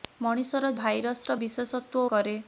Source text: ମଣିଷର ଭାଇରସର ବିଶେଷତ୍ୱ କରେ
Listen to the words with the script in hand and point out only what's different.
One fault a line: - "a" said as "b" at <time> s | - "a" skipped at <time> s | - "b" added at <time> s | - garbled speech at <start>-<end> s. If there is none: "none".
none